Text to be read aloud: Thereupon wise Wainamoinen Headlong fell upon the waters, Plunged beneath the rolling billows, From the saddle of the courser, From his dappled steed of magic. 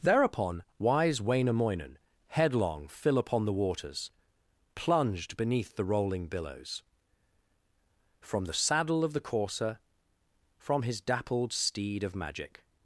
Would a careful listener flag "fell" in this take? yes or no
yes